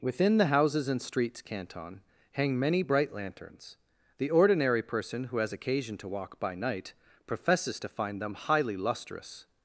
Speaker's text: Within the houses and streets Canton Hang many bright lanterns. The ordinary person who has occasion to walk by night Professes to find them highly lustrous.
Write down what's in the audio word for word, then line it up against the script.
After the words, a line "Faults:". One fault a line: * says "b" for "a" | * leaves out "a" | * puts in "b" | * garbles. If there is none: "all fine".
Within the houses and streets Canton Hang many bright lanterns. The ordinary person who has occasion to walk by night Professes to find them highly lustrous.
Faults:
all fine